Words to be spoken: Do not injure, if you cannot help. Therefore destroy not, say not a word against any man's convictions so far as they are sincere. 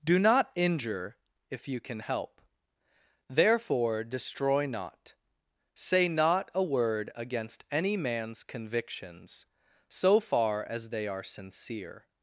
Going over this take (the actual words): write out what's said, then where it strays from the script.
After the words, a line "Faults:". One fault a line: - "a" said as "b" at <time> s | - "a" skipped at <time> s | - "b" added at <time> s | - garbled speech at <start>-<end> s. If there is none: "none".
Do not injure, if you can help. Therefore destroy not, say not a word against any man's convictions so far as they are sincere.
Faults:
- "cannot" said as "can" at 1.8 s